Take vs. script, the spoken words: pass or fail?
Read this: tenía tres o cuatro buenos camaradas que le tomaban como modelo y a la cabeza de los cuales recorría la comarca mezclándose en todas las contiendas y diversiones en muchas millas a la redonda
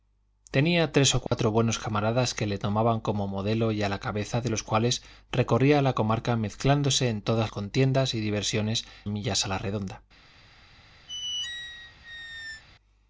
fail